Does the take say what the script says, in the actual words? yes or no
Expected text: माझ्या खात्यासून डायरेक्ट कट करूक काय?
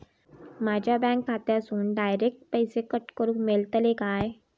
no